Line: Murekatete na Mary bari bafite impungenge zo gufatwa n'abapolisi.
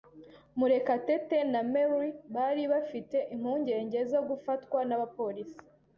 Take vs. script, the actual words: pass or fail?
pass